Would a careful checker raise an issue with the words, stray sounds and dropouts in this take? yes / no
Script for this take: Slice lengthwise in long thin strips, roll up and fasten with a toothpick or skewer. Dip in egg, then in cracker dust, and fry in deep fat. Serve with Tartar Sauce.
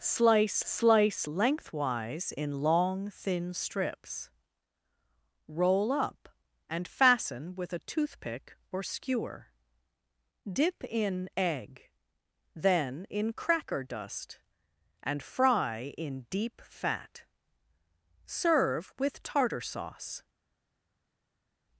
yes